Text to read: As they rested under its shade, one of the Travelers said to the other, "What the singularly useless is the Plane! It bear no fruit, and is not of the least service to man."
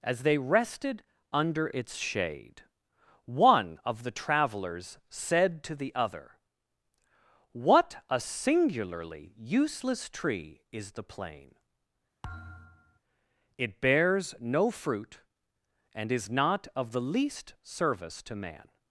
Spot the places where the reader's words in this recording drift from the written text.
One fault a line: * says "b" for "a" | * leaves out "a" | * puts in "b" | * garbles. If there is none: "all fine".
* says "a" for "the"
* puts in "tree"
* says "bears" for "bear"